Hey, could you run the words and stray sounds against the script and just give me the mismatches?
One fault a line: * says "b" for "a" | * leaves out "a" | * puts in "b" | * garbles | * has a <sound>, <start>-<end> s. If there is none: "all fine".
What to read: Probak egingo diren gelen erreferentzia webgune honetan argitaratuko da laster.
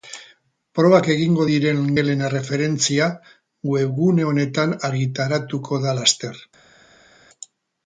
all fine